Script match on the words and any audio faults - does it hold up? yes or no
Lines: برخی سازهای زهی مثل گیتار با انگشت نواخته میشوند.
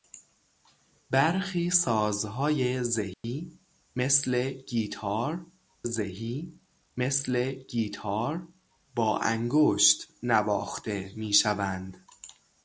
no